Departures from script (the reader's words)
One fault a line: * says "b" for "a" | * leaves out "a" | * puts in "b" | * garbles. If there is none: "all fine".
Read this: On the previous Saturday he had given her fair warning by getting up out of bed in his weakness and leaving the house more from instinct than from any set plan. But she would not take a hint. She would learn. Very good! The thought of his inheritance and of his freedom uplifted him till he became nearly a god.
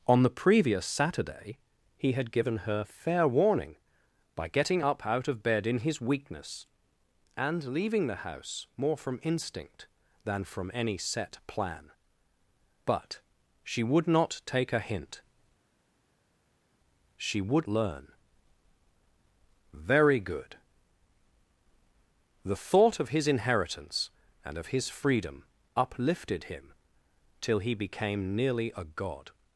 all fine